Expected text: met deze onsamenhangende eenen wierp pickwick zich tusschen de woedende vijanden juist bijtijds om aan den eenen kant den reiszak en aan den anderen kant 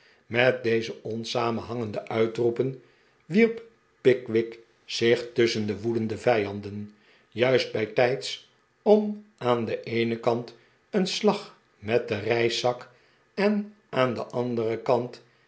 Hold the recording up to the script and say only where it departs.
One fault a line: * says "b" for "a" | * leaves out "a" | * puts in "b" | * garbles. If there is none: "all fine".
* says "uitroepen" for "eenen"
* puts in "een slag met"